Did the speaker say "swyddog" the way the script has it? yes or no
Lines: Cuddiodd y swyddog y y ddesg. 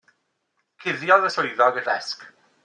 yes